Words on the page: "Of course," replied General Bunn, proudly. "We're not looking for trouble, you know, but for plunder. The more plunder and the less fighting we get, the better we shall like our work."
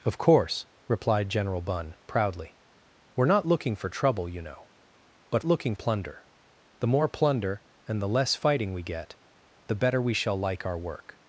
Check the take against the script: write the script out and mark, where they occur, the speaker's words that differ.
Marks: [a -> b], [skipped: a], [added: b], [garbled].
"Of course," replied General Bunn, proudly. "We're not looking for trouble, you know, but [for -> looking] plunder. The more plunder and the less fighting we get, the better we shall like our work."